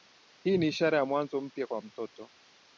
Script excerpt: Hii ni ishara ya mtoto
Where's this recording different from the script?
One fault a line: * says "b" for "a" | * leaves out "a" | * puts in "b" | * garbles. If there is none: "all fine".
* puts in "mwanzo mpya kwa"